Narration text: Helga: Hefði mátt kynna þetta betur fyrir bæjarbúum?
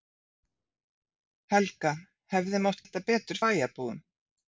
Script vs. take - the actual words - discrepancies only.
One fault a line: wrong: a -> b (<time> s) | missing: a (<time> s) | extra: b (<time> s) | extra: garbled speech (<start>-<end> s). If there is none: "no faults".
missing: kynna (2.8 s)
missing: fyrir (3.4 s)